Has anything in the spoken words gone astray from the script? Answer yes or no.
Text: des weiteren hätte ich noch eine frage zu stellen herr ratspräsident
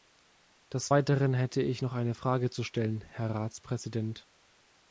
no